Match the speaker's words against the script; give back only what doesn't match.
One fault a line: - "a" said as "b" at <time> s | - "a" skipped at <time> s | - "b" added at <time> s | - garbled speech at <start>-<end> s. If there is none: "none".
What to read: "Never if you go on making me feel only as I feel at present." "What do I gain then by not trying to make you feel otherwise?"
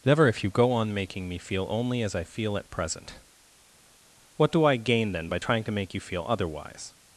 - "not" skipped at 5.4 s